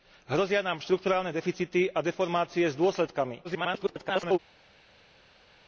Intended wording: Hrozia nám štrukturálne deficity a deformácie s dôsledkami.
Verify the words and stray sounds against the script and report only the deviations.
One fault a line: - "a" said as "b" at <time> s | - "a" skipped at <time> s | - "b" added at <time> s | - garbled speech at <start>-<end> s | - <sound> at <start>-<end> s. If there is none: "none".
- garbled speech at 3.4-4.4 s